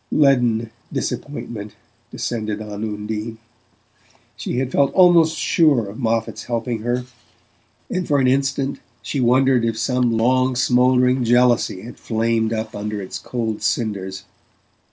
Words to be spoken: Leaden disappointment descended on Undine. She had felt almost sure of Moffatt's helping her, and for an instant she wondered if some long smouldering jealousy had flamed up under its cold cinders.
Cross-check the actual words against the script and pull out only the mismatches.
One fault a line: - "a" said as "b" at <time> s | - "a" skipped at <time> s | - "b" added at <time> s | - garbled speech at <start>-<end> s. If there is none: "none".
none